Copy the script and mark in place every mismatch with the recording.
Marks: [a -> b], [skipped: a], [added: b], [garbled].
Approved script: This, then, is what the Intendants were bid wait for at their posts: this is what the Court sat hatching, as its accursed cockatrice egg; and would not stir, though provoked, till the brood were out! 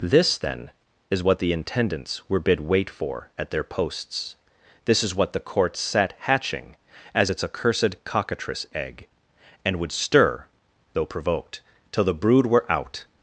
This, then, is what the Intendants were bid wait for at their posts: this is what the Court sat hatching, as its accursed cockatrice egg; and would [skipped: not] stir, though provoked, till the brood were out!